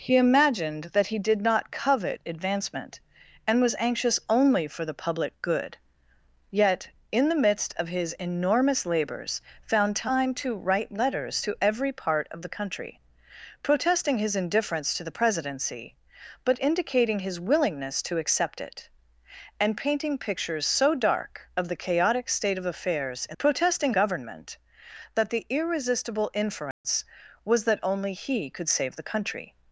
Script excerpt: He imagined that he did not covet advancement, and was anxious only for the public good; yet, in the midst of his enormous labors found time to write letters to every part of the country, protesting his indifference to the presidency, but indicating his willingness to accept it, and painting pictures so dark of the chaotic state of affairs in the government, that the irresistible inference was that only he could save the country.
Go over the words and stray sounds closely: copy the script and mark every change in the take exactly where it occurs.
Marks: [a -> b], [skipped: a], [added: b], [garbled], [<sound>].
He imagined that he did not covet advancement, and was anxious only for the public good; yet, in the midst of his enormous labors found time to write letters to every part of the country, protesting his indifference to the presidency, but indicating his willingness to accept it, and painting pictures so dark of the chaotic state of affairs in [the -> protesting] government, that the irresistible inference [dropout] was that only he could save the country.